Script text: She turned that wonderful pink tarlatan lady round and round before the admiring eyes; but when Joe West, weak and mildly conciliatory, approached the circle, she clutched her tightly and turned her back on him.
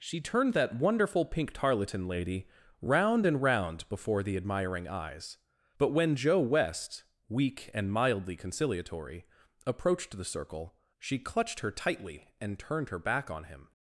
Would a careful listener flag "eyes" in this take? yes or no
no